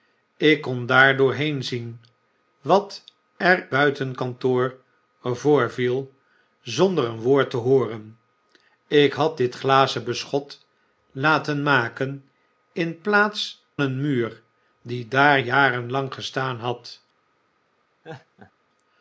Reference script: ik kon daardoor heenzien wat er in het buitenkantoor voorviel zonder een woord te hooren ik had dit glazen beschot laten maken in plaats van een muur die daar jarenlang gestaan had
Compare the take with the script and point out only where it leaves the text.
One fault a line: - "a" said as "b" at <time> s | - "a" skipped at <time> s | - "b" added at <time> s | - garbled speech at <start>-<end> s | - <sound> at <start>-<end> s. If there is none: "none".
- "in het" skipped at 3.7 s
- "van" skipped at 13.6 s
- laugh at 18.0-18.5 s